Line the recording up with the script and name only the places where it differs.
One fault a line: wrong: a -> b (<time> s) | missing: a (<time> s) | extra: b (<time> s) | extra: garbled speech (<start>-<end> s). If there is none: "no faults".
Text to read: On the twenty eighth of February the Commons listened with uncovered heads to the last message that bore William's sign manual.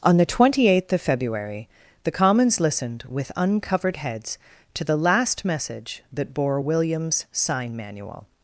no faults